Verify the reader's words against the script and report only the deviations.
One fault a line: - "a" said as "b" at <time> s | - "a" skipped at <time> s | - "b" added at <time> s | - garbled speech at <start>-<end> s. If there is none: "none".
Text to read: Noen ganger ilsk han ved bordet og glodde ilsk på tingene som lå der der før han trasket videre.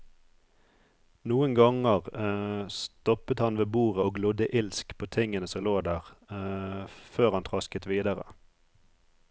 - "ilsk" said as "stoppet" at 2.7 s
- "der" skipped at 6.1 s